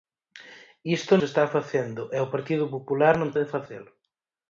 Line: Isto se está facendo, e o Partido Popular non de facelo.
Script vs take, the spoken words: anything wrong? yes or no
no